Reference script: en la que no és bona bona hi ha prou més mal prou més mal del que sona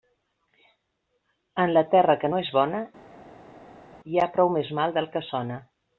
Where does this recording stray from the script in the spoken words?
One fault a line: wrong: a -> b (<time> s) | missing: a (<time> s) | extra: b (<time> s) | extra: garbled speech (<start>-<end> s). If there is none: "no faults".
extra: terra (1.9 s)
missing: bona (2.8 s)
missing: prou més mal (5.0 s)